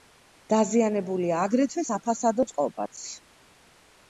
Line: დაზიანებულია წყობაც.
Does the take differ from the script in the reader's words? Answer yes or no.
yes